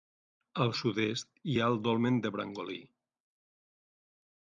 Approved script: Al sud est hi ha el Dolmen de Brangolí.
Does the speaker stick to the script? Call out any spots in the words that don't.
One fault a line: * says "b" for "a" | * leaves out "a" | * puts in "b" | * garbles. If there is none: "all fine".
all fine